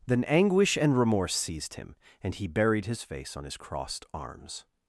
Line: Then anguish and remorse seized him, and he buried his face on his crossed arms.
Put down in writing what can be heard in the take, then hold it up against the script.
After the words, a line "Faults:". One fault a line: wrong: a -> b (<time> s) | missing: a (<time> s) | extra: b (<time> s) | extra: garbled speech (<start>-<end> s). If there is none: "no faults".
Then anguish and remorse seized him, and he buried his face on his crossed arms.
Faults:
no faults